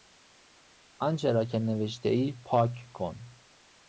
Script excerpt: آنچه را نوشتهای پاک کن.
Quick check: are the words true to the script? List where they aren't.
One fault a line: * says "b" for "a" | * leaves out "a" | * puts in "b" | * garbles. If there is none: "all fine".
* puts in "که"